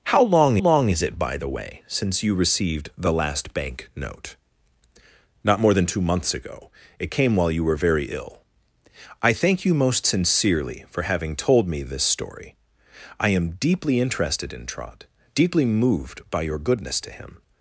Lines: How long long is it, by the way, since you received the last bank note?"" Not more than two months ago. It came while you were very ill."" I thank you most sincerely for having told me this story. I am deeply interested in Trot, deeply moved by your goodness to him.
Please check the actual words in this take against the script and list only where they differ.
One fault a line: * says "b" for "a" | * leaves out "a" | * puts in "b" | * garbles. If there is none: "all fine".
all fine